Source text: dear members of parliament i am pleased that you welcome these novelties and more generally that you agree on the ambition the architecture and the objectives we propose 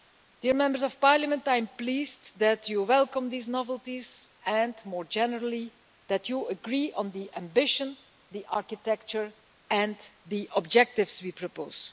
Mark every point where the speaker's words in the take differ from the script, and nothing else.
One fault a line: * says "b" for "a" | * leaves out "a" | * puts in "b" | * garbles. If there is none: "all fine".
all fine